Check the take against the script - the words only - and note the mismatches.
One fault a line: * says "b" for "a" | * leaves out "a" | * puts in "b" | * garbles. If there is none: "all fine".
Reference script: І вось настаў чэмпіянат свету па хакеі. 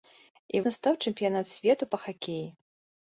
* leaves out "вось"